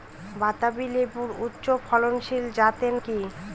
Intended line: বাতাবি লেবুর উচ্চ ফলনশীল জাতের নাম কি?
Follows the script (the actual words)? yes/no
no